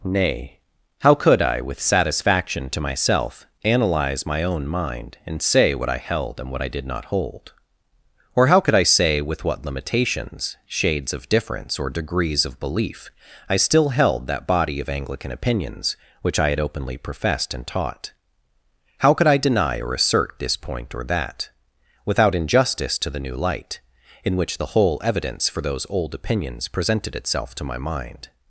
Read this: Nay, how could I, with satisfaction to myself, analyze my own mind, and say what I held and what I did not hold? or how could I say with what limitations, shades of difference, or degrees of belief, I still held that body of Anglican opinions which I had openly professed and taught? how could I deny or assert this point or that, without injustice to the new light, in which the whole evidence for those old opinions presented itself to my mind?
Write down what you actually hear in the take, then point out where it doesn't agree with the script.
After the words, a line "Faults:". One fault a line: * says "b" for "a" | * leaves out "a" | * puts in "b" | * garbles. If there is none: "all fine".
Nay, how could I, with satisfaction to myself, analyze my own mind, and say what I held and what I did not hold? or how could I say with what limitations, shades of difference, or degrees of belief, I still held that body of Anglican opinions which I had openly professed and taught? how could I deny or assert this point or that, without injustice to the new light, in which the whole evidence for those old opinions presented itself to my mind?
Faults:
all fine